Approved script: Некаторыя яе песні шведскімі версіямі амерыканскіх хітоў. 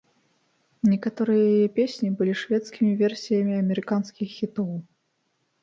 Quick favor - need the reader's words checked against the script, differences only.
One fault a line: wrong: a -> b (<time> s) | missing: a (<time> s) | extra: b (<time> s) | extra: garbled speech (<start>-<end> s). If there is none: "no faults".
extra: былі (2.2 s)